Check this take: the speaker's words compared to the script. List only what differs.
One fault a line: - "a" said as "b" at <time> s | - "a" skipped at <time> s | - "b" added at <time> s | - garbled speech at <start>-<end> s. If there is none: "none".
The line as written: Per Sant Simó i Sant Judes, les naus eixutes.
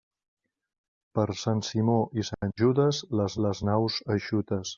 - "les" added at 3.5 s